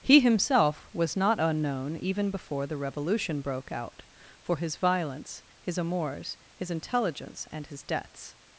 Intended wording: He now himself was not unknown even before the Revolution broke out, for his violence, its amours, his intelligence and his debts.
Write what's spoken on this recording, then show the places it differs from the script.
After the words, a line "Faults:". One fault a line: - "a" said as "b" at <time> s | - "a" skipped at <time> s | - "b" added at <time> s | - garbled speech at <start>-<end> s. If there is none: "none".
He himself was not unknown even before the Revolution broke out, for his violence, his amours, his intelligence and his debts.
Faults:
- "now" skipped at 0.2 s
- "its" said as "his" at 5.6 s